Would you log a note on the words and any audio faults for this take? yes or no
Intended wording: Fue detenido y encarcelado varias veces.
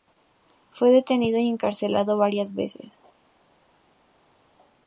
no